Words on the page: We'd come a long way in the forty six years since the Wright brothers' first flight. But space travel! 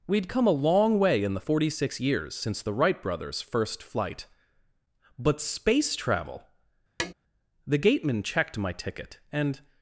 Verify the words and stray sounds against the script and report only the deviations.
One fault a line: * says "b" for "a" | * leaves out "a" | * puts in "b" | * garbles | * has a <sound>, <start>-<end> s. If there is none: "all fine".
* has a tap, 7.0-7.1 s
* puts in "The gateman checked my ticket and"